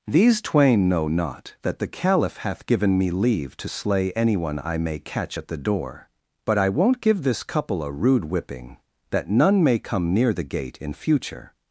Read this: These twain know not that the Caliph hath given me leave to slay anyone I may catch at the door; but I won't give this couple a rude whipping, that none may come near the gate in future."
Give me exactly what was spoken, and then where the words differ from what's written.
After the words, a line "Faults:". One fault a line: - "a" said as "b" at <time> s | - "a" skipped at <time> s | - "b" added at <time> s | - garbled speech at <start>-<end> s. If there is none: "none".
These twain know not that the Caliph hath given me leave to slay anyone I may catch at the door; but I won't give this couple a rude whipping, that none may come near the gate in future."
Faults:
none